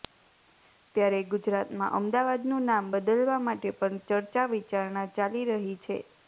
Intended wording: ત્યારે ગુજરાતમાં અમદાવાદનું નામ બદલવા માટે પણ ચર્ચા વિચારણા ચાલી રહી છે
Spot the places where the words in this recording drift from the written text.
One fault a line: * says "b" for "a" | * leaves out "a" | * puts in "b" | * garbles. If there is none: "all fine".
all fine